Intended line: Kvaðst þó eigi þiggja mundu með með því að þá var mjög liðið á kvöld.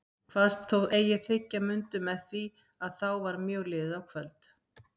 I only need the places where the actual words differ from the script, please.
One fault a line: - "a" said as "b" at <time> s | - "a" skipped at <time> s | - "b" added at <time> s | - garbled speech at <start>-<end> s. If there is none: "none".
- "með" skipped at 2.2 s